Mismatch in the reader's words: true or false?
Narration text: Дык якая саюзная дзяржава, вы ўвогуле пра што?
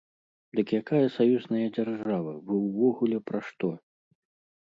false